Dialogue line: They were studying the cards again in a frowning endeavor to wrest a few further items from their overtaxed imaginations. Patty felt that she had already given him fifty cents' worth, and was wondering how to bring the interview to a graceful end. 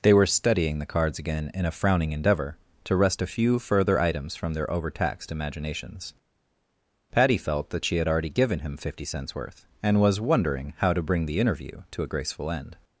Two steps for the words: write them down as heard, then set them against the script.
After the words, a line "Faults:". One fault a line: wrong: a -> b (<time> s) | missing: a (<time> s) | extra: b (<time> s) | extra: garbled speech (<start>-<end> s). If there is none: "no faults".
They were studying the cards again in a frowning endeavor to wrest a few further items from their overtaxed imaginations. Patty felt that she had already given him fifty cents' worth, and was wondering how to bring the interview to a graceful end.
Faults:
no faults